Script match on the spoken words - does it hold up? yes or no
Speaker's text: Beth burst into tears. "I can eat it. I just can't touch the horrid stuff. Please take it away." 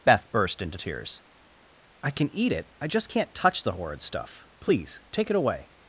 yes